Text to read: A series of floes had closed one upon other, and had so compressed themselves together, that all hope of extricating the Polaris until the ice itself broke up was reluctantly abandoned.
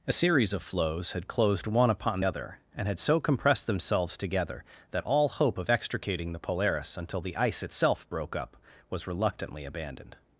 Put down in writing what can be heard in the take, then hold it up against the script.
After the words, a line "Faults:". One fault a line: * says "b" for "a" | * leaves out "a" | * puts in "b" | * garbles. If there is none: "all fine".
A series of floes had closed one upon other, and had so compressed themselves together, that all hope of extricating the Polaris until the ice itself broke up was reluctantly abandoned.
Faults:
all fine